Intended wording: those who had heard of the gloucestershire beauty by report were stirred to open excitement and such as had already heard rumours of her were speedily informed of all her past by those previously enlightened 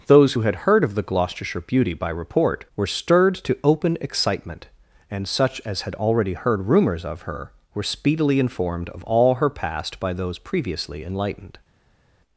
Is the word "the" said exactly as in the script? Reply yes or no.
yes